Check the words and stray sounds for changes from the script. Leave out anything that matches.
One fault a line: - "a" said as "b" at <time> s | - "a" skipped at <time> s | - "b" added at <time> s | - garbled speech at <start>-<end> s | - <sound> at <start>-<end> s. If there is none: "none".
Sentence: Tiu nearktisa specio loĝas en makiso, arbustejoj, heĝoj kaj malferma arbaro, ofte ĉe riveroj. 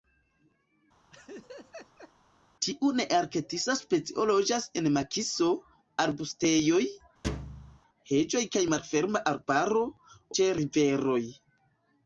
- laugh at 1.1-2.1 s
- thud at 7.2-7.8 s
- "ofte" skipped at 9.9 s